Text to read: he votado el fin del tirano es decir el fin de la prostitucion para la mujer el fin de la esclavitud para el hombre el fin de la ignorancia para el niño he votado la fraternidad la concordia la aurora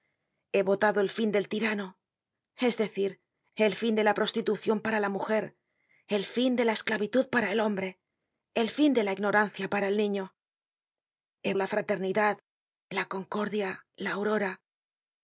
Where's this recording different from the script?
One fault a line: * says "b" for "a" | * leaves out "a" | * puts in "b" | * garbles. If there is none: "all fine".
* leaves out "votado"